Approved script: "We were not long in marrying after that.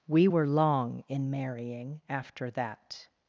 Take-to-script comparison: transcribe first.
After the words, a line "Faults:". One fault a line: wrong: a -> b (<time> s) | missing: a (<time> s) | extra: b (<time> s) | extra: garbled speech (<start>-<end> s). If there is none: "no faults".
"We were long in marrying after that.
Faults:
missing: not (0.5 s)